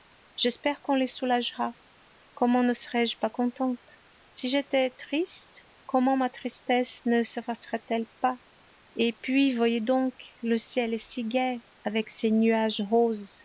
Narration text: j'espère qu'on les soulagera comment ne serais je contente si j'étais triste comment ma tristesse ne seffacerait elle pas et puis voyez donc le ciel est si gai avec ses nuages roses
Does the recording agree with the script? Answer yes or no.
no